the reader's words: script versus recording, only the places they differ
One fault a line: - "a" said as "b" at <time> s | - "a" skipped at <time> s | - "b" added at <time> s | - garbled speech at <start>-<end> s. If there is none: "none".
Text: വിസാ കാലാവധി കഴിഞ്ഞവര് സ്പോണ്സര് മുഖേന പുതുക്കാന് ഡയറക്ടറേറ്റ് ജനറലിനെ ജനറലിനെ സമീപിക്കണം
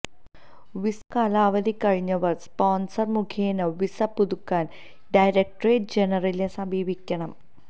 - "വിസ" added at 3.8 s
- "ജനറലിനെ" skipped at 6.5 s